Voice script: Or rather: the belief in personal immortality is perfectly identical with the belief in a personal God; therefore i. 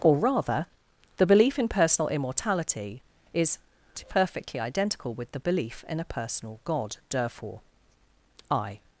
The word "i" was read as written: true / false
true